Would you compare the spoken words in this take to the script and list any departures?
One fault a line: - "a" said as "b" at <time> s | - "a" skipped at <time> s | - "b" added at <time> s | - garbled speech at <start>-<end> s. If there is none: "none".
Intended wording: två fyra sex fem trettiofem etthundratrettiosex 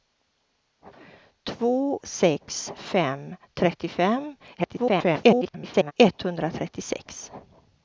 - "fyra" skipped at 2.0 s
- garbled speech at 4.6-5.9 s